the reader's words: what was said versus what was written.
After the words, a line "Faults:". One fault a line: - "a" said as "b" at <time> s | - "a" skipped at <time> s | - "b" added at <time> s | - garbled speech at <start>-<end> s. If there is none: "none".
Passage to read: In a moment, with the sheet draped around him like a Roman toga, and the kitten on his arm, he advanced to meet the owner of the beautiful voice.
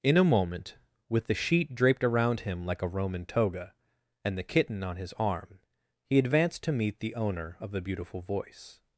In a moment, with the sheet draped around him like a Roman toga, and the kitten on his arm, he advanced to meet the owner of the beautiful voice.
Faults:
none